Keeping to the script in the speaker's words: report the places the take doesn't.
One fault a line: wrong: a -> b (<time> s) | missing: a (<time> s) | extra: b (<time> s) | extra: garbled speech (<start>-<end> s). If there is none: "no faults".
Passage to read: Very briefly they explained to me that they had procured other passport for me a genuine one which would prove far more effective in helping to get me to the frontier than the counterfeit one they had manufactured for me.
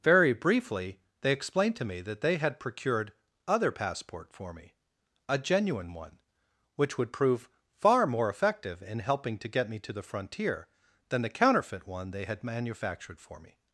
no faults